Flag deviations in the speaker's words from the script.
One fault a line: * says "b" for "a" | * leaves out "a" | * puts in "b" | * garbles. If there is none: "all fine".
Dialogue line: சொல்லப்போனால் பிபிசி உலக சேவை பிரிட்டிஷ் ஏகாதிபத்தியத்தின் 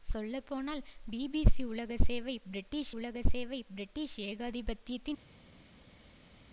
* puts in "உலக சேவை பிரிட்டிஷ்"